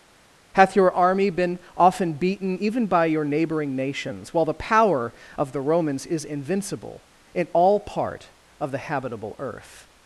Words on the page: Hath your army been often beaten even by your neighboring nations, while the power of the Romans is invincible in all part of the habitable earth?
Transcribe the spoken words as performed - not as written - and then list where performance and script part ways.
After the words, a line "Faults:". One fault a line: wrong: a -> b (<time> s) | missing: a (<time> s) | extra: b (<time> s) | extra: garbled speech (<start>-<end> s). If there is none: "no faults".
Hath your army been often beaten even by your neighboring nations, while the power of the Romans is invincible in all part of the habitable earth?
Faults:
no faults